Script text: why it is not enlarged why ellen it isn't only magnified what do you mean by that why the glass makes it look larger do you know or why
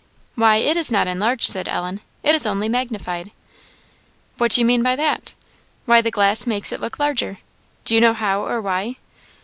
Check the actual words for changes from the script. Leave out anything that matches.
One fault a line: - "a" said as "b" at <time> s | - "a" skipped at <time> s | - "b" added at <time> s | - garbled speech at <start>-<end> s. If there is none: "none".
- "why" said as "said" at 1.5 s
- "isn't" said as "is" at 2.3 s
- "how" added at 8.1 s